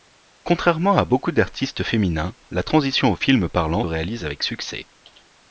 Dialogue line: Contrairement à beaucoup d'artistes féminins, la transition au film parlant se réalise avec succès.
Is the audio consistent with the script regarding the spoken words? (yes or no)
no